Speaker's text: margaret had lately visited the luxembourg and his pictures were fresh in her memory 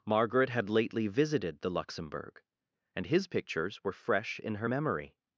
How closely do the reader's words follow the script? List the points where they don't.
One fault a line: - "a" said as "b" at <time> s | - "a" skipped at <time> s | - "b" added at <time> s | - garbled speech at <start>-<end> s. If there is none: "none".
none